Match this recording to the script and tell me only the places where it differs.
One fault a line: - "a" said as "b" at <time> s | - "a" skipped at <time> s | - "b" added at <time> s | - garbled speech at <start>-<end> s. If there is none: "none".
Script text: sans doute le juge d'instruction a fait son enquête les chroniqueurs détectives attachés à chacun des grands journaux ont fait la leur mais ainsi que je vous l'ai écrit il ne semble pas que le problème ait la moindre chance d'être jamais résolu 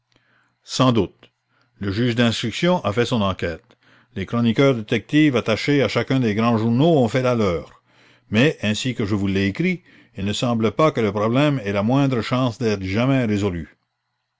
none